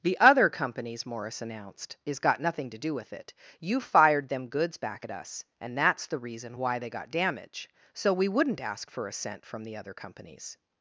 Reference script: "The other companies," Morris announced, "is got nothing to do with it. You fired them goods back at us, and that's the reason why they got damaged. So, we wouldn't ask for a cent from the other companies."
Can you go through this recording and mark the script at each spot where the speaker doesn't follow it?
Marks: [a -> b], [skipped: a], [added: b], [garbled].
"The other companies," Morris announced, "is got nothing to do with it. You fired them goods back at us, and that's the reason why they got [damaged. -> damage] So, we wouldn't ask for a cent from the other companies."